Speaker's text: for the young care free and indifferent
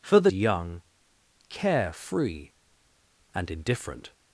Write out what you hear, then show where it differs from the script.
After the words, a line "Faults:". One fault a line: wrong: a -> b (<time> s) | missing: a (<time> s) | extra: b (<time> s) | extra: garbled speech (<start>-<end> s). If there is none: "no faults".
for the young care free and indifferent
Faults:
no faults